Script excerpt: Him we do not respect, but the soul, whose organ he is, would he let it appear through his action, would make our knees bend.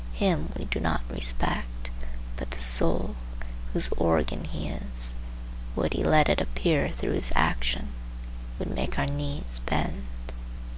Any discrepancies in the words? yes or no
no